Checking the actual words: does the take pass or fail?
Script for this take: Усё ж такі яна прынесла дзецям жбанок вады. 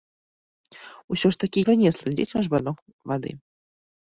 fail